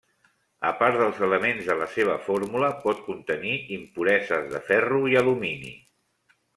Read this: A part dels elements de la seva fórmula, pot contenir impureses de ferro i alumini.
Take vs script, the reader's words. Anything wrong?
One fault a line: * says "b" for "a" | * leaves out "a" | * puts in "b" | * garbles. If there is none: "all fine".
all fine